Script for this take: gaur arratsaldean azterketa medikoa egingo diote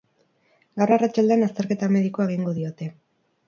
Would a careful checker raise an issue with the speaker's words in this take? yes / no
no